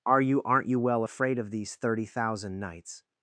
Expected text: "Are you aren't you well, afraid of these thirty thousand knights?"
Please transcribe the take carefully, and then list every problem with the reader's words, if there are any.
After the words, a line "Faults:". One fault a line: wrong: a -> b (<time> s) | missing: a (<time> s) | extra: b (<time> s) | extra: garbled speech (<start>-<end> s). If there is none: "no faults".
"Are you aren't you well, afraid of these thirty thousand knights?"
Faults:
no faults